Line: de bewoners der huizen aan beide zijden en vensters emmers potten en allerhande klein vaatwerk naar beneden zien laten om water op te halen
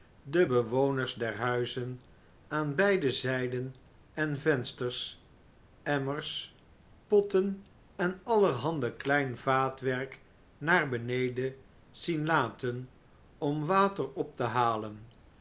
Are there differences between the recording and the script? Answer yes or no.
no